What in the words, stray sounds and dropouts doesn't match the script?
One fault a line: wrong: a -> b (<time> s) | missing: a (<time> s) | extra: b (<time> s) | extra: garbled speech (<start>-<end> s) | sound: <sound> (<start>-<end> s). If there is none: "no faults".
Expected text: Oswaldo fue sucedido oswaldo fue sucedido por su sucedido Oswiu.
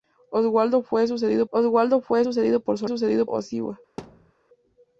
sound: thud (4.0-4.3 s)